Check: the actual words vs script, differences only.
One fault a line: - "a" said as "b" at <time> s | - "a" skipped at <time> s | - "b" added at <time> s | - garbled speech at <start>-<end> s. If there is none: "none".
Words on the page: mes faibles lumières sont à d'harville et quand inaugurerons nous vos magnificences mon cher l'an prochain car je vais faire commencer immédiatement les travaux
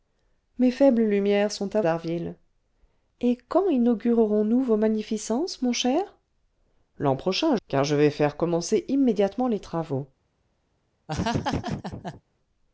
none